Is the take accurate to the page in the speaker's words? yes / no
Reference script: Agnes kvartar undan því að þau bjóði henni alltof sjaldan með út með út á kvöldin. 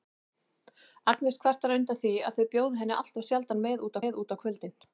yes